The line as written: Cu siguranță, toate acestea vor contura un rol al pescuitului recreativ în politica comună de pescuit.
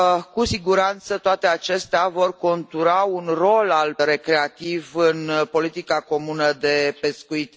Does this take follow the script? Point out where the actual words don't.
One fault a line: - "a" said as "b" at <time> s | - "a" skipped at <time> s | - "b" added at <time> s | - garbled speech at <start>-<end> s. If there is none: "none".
- "pescuitului" skipped at 3.9 s